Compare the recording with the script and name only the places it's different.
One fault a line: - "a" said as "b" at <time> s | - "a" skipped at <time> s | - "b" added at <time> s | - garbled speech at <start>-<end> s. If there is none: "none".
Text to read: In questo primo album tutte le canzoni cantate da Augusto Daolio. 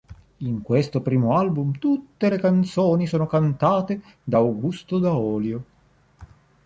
- "sono" added at 3.1 s